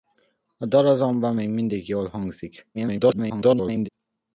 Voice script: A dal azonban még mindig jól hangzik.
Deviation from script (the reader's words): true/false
true